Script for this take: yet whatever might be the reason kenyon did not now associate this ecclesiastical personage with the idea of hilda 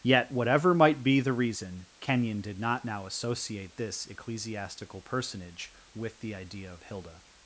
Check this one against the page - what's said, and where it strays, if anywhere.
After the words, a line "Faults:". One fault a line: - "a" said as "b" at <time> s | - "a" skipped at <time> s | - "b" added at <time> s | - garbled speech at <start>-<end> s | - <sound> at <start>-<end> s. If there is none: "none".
yet whatever might be the reason kenyon did not now associate this ecclesiastical personage with the idea of hilda
Faults:
none